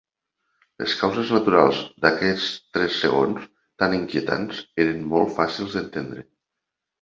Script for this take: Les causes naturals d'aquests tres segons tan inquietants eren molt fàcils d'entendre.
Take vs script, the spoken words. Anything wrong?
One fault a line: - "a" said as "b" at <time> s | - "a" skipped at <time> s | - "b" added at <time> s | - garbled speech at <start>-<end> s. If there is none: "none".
none